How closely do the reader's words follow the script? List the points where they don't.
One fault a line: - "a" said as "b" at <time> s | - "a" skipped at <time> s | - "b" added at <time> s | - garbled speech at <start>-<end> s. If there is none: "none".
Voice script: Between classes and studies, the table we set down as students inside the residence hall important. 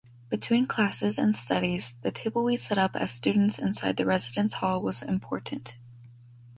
- "down" said as "up" at 2.8 s
- "was" added at 4.8 s